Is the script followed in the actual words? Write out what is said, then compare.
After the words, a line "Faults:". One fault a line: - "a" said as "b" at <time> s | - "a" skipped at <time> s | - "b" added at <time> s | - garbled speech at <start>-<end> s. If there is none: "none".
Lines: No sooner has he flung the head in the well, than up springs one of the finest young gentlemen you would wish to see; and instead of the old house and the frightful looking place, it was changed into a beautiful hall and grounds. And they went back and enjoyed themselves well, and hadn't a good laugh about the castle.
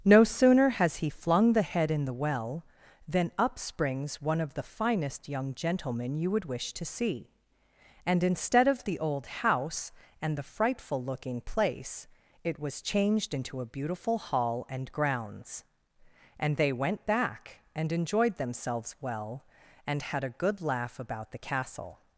No sooner has he flung the head in the well, than up springs one of the finest young gentlemen you would wish to see; and instead of the old house and the frightful looking place, it was changed into a beautiful hall and grounds. And they went back and enjoyed themselves well, and had a good laugh about the castle.
Faults:
- "hadn't" said as "had" at 20.0 s